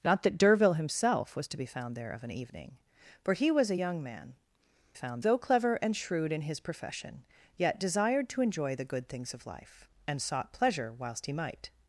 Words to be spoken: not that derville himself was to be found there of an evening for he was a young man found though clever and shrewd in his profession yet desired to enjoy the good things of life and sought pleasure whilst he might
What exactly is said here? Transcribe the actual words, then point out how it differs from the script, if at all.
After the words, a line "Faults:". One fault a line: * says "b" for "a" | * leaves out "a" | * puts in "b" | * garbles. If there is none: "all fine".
not that derville himself was to be found there of an evening for he was a young man found though clever and shrewd in his profession yet desired to enjoy the good things of life and sought pleasure whilst he might
Faults:
all fine